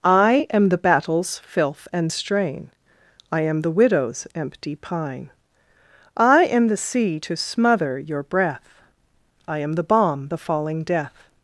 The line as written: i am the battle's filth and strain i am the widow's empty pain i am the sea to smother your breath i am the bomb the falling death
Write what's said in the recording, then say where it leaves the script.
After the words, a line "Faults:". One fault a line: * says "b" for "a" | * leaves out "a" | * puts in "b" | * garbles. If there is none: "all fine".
i am the battle's filth and strain i am the widow's empty pine i am the sea to smother your breath i am the bomb the falling death
Faults:
* says "pine" for "pain"